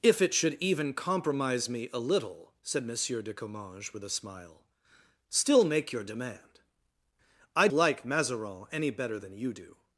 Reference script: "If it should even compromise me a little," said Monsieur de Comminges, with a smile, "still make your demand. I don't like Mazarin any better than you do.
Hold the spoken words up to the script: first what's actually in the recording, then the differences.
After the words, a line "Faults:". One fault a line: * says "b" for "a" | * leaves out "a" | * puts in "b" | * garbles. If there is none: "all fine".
"If it should even compromise me a little," said Monsieur de Comminges, with a smile, "still make your demand. I like Mazarin any better than you do.
Faults:
* leaves out "don't"